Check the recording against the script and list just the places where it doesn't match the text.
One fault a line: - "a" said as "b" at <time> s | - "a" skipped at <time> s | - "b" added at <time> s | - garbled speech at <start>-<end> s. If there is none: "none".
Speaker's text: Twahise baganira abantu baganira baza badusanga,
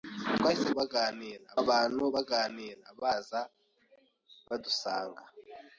none